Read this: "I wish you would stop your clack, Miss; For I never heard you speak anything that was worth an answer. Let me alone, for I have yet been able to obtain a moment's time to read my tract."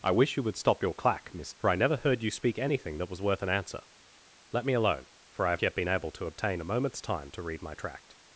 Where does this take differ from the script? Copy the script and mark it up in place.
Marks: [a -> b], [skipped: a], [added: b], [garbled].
"I wish you would stop your clack, Miss; For I never heard you speak anything that was worth an answer. Let me alone, for I have yet been able to obtain a moment's time to read my tract."